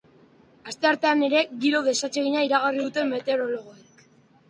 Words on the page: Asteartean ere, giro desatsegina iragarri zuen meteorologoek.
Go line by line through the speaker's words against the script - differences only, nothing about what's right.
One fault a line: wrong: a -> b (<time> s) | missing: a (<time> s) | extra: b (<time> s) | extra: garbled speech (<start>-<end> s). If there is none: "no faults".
wrong: zuen -> dute (2.8 s)